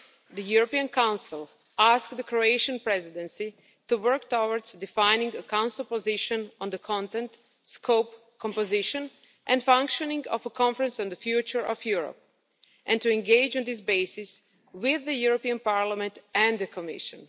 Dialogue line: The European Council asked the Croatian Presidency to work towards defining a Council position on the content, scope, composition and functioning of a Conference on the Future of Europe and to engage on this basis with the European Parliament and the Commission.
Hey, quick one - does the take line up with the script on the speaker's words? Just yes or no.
yes